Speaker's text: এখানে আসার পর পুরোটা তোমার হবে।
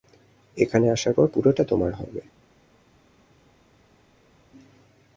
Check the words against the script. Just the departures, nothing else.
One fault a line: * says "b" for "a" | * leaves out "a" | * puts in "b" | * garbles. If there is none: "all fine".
all fine